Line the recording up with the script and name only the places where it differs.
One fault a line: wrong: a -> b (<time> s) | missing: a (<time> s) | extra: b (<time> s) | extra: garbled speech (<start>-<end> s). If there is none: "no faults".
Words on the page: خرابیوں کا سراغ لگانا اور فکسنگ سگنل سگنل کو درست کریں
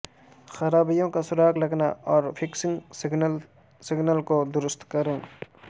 no faults